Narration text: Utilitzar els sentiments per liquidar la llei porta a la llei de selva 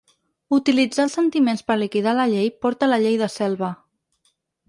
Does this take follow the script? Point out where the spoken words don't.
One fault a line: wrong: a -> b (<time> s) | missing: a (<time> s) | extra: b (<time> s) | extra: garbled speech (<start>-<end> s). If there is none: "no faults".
no faults